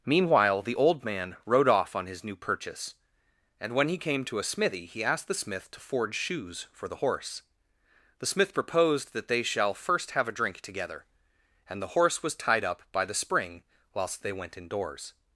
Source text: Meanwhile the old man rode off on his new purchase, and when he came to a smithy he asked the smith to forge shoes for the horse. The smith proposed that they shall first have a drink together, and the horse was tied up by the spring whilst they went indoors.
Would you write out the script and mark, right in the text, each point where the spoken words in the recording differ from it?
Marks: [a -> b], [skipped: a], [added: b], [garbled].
Meanwhile the old man rode off on his new purchase, and when he came to a smithy he asked the smith to forge shoes for the horse. The smith proposed that they shall first have a drink together, and the horse was tied up by the spring whilst they went indoors.